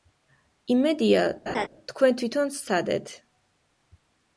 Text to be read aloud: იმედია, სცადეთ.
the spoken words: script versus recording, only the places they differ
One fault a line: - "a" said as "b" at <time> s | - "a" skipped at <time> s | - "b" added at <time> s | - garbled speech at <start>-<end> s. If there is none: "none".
- "თქვენ თვითონ" added at 1.9 s